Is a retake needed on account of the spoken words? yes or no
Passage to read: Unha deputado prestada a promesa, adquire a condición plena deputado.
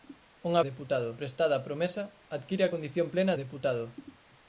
no